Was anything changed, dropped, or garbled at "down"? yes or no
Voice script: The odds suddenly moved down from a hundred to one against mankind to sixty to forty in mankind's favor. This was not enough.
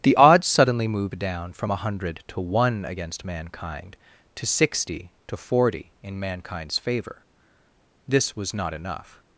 no